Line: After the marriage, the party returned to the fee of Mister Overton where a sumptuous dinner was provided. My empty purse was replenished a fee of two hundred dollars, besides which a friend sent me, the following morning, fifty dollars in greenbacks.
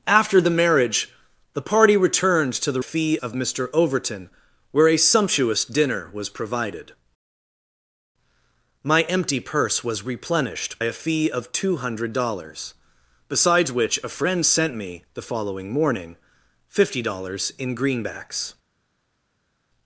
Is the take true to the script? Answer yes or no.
yes